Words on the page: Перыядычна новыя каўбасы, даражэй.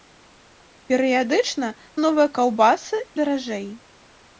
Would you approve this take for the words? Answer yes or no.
yes